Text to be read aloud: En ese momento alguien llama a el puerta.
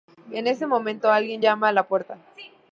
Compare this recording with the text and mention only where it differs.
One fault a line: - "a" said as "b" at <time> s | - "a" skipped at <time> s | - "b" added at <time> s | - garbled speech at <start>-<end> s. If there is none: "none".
- "el" said as "la" at 1.7 s